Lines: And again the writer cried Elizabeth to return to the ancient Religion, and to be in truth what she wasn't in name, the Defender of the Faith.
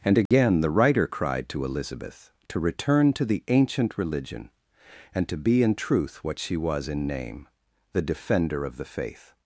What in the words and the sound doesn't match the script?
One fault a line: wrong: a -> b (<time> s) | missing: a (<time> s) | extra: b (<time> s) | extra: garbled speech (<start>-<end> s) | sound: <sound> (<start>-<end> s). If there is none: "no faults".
sound: dropout (0.3-0.3 s)
extra: to (1.5 s)
wrong: wasn't -> was (6.6 s)